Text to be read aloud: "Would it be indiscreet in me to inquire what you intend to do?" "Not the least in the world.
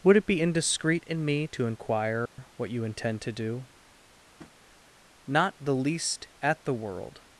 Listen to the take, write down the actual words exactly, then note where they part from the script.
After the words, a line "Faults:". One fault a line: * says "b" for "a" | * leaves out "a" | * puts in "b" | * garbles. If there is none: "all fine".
"Would it be indiscreet in me to inquire what you intend to do?" "Not the least at the world.
Faults:
* says "at" for "in"